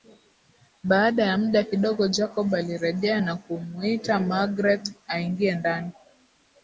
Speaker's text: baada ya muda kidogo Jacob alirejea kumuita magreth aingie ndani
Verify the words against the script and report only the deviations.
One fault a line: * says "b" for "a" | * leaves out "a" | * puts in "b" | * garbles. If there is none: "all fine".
* puts in "na"